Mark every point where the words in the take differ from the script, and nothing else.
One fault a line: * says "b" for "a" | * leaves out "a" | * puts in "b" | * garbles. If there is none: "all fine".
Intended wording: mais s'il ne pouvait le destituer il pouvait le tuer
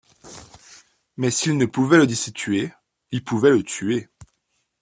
all fine